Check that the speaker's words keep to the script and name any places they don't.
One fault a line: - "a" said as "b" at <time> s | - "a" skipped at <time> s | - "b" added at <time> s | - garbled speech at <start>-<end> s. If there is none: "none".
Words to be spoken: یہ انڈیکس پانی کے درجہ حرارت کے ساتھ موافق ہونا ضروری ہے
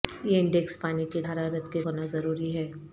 - "درجہ" skipped at 1.2 s
- "ساتھ موافق" skipped at 1.8 s